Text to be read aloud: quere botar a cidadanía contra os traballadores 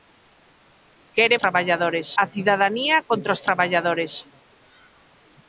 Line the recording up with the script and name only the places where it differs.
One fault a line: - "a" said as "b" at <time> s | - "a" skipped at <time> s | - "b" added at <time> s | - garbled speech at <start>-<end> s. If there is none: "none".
- "botar" said as "traballadores" at 1.4 s